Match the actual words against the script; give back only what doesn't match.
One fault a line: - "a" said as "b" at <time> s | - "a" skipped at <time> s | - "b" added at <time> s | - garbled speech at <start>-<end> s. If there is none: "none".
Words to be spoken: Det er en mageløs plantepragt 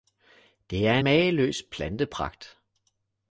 - "en" skipped at 1.0 s